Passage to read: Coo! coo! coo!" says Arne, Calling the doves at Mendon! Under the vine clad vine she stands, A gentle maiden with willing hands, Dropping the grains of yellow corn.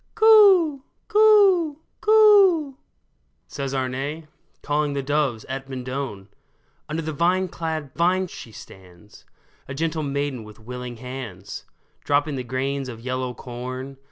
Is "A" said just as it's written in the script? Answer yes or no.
yes